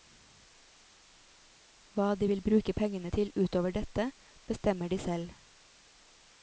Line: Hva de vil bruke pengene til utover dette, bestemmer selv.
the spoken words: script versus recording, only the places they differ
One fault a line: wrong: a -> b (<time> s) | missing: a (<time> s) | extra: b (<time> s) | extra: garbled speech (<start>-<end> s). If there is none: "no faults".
extra: de (4.9 s)